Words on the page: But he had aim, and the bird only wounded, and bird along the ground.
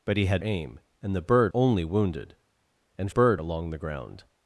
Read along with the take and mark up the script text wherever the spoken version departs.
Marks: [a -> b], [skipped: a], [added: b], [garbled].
But he had aim, and the bird only wounded, and bird along the ground.